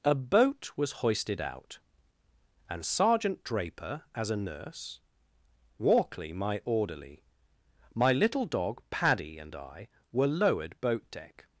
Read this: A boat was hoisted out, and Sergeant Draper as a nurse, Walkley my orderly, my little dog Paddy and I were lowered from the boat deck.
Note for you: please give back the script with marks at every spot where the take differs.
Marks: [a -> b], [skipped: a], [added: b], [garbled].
A boat was hoisted out, and Sergeant Draper as a nurse, Walkley my orderly, my little dog Paddy and I were lowered [skipped: from the] boat deck.